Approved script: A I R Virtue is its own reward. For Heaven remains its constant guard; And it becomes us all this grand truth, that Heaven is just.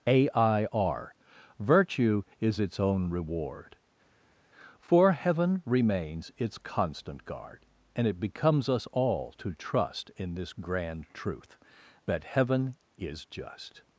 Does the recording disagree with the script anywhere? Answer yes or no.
yes